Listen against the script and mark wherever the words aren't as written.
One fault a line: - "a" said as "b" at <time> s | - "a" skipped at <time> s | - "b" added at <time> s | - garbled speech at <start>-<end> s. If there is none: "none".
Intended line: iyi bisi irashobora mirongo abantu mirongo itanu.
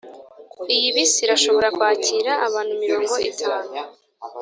- "mirongo" said as "kwakira" at 1.7 s